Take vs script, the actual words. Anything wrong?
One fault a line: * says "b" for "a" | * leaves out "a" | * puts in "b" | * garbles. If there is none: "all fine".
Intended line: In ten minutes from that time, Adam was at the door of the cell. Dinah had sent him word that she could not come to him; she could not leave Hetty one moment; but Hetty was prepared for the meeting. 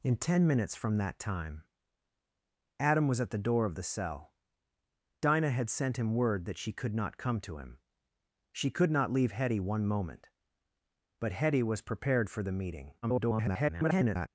* garbles